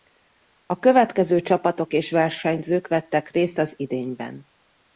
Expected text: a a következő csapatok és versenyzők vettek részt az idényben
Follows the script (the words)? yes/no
no